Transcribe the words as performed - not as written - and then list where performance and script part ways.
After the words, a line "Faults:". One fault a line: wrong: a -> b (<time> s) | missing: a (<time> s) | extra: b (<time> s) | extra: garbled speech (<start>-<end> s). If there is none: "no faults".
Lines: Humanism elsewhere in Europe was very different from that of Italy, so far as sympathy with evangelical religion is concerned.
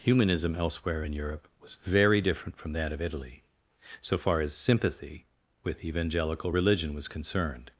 Humanism elsewhere in Europe was very different from that of Italy, so far as sympathy with evangelical religion was concerned.
Faults:
wrong: is -> was (6.9 s)